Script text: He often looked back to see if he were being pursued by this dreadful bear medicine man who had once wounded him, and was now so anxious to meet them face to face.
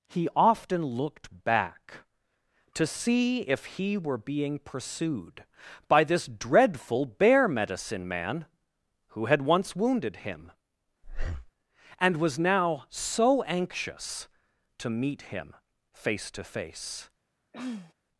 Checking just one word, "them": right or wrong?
wrong